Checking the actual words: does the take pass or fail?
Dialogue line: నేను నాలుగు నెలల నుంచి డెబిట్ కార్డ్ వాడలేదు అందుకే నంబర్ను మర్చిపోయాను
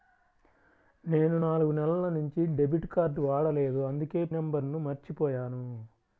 pass